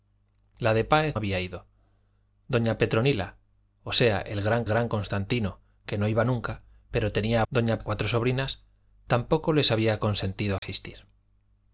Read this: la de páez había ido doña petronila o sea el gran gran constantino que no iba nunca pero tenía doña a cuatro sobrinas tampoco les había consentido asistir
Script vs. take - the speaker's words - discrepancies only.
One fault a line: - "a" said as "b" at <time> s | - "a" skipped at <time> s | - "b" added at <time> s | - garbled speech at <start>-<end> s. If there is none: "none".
none